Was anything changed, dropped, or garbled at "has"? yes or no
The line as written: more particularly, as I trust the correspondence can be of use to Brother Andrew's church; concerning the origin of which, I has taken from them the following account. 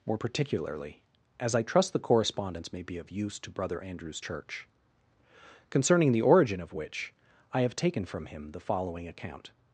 yes